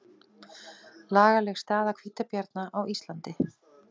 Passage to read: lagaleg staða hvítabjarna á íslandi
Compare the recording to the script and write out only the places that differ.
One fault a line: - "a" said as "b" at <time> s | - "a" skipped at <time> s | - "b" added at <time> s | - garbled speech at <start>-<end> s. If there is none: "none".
none